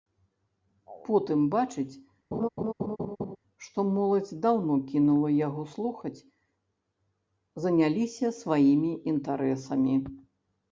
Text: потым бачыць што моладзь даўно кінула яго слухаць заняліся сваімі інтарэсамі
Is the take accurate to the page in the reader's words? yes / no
yes